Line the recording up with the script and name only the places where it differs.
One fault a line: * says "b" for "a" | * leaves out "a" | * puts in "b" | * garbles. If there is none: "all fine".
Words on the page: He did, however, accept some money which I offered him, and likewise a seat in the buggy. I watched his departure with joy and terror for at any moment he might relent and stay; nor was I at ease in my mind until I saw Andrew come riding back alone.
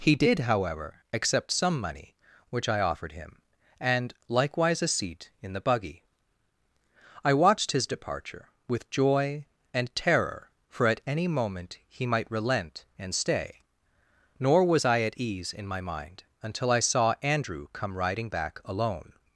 all fine